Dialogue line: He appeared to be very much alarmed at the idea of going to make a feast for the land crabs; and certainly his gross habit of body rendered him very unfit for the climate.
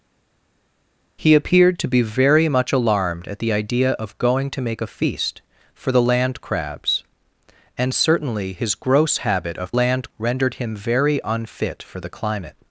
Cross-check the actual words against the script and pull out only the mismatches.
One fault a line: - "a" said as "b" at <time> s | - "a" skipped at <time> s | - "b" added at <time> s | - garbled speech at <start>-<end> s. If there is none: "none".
- "body" said as "land" at 9.7 s